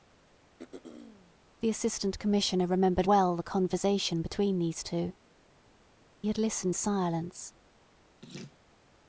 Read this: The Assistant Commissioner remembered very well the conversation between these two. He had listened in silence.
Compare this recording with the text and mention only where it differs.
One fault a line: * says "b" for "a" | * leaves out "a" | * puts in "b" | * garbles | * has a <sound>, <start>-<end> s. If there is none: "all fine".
* has a throat clearing, 0.6-1.4 s
* leaves out "very"
* leaves out "He"
* leaves out "in"
* has a laugh, 8.2-8.6 s